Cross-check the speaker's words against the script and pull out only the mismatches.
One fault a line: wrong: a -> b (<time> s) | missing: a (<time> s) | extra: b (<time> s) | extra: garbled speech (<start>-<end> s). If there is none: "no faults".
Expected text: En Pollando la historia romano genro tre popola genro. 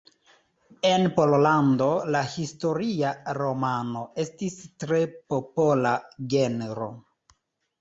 wrong: genro -> estis (4.3 s)